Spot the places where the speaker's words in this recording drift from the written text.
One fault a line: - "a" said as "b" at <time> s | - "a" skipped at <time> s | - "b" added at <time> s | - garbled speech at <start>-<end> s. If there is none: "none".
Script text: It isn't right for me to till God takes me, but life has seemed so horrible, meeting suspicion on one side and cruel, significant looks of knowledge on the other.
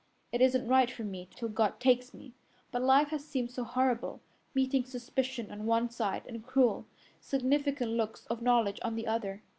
none